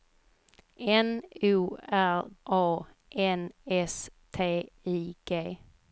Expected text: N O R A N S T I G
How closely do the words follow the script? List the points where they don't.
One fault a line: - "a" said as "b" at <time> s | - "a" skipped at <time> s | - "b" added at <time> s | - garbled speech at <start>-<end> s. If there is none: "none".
none